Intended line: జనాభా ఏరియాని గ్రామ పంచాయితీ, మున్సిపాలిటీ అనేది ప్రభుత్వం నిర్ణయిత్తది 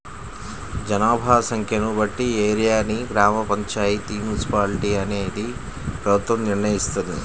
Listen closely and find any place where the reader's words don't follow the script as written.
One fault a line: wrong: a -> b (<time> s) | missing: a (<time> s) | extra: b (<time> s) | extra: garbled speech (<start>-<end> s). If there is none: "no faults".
extra: సంఖ్యను బట్టి (1.5 s)